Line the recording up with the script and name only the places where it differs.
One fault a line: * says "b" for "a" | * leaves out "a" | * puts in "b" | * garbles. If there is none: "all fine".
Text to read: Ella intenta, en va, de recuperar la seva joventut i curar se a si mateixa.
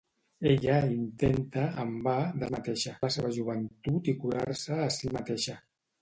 * says "mateixa" for "recuperar"